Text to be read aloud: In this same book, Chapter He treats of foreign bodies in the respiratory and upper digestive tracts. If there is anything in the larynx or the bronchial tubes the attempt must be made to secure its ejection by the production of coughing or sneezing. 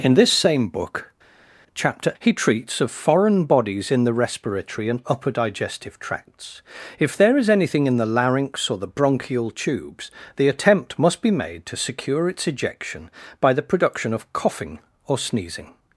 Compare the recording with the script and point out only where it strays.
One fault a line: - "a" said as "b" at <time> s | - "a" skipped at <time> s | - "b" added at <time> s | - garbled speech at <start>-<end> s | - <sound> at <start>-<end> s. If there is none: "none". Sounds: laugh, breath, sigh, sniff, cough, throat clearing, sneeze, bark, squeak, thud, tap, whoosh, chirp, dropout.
none